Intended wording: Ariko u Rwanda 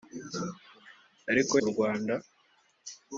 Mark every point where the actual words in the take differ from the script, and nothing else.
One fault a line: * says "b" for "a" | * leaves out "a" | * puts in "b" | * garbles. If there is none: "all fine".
all fine